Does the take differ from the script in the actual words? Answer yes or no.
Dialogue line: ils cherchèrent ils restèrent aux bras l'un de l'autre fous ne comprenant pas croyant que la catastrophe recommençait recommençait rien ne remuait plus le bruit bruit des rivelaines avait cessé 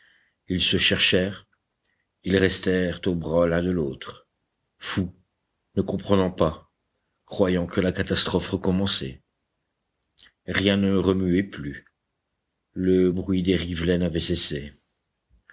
yes